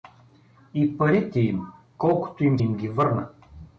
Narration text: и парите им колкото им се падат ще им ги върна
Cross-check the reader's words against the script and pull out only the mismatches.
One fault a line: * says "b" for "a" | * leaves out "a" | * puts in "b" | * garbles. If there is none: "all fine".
* leaves out "се падат ще"